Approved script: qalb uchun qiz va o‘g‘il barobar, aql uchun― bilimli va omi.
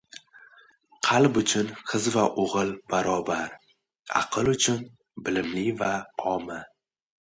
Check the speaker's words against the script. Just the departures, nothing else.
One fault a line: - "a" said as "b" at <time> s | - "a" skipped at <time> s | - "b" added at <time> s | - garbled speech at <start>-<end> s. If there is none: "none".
none